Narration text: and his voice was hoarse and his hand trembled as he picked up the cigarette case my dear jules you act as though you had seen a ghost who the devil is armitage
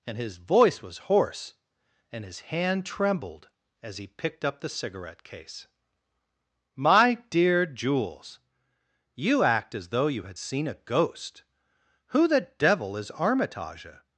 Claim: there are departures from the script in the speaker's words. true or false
false